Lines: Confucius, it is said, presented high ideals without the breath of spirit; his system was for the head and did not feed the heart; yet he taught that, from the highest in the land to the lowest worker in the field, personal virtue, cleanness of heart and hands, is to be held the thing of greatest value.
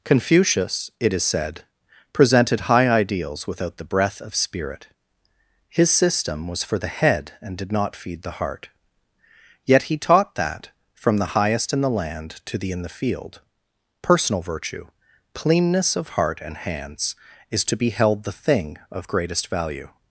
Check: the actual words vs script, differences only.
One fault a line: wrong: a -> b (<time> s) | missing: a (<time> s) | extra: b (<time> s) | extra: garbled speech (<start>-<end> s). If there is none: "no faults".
missing: lowest worker (12.7 s)